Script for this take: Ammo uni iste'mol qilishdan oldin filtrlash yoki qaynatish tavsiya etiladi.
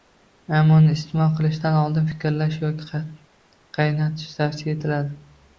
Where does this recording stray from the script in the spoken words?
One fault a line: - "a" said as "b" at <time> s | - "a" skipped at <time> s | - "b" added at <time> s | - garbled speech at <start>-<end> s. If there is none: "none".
none